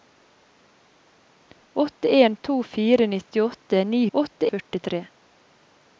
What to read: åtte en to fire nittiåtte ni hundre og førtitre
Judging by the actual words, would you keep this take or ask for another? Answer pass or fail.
fail